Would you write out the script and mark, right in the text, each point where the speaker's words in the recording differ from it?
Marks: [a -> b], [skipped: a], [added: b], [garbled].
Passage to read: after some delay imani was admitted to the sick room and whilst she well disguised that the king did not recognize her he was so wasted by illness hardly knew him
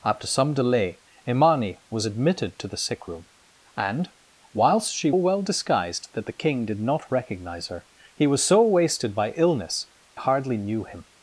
after some delay imani was admitted to the sick room and whilst she well disguised that the king did not recognize her he was so wasted by illness hardly knew him